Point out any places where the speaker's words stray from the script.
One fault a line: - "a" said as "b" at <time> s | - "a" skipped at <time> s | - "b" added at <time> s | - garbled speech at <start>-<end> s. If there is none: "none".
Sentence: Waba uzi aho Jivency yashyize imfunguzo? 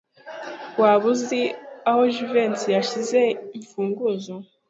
none